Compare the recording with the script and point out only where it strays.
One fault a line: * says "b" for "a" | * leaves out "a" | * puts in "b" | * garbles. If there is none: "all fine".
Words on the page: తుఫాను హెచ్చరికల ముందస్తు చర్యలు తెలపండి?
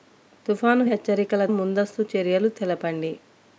all fine